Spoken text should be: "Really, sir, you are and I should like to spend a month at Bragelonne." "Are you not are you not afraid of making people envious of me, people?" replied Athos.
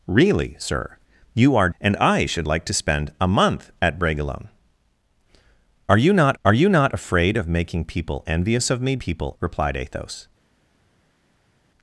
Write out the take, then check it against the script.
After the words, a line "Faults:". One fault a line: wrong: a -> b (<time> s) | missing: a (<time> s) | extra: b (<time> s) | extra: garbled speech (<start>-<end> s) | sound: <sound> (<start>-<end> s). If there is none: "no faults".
"Really, sir, you are and I should like to spend a month at Bragelonne." "Are you not are you not afraid of making people envious of me, people?" replied Athos.
Faults:
no faults